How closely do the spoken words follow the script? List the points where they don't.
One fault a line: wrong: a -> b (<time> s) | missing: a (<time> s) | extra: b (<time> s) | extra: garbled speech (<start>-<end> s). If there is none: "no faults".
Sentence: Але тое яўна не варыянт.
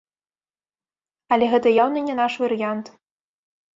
wrong: тое -> гэта (1.5 s)
extra: наш (2.2 s)